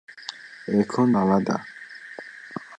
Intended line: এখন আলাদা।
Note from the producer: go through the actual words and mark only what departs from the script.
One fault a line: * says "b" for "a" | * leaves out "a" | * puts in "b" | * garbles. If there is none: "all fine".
all fine